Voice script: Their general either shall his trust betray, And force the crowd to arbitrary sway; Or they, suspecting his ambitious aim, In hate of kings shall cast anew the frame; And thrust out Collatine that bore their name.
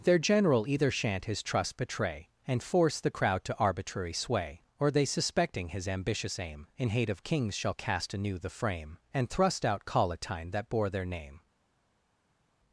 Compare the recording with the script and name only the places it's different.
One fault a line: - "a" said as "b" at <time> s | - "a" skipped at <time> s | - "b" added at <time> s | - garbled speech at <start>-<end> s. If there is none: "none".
- "shall" said as "shan't" at 0.9 s